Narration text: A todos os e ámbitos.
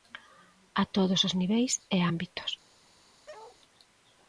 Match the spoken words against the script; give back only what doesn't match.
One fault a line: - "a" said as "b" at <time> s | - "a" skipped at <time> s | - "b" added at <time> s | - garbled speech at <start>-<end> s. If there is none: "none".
- "niveis" added at 1.4 s